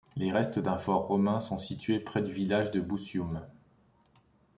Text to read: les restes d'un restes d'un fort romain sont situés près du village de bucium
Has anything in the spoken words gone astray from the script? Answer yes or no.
yes